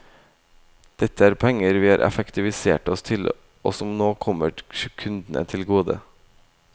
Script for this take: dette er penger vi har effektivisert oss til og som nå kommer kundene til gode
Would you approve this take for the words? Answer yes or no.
yes